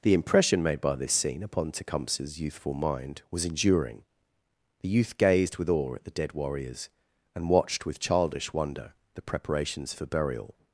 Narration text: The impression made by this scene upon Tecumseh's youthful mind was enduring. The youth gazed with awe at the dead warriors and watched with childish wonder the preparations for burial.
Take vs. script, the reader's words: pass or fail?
pass